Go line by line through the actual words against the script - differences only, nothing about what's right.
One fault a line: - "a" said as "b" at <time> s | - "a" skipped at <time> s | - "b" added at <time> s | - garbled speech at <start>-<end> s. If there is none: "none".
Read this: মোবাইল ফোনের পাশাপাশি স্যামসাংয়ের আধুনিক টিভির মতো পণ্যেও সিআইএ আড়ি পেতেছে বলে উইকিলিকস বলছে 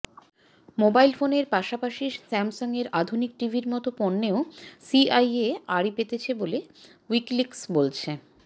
none